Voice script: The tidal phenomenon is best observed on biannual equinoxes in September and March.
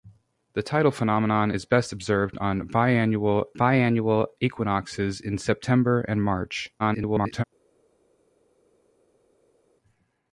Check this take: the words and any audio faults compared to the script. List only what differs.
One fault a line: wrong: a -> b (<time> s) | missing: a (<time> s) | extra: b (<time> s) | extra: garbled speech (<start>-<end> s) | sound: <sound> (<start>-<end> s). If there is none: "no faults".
extra: biannual (3.5 s)
extra: garbled speech (6.8-7.4 s)